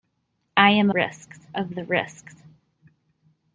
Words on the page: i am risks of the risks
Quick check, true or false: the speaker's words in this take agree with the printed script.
true